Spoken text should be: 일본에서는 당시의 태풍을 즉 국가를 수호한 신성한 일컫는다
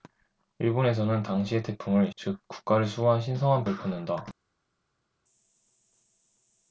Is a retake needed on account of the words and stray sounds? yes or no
no